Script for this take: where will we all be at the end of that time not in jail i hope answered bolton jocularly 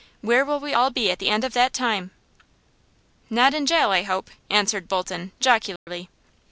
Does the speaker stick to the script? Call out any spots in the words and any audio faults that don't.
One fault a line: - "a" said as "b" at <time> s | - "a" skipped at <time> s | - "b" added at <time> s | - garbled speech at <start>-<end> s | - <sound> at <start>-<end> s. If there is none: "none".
- dropout at 5.8-5.9 s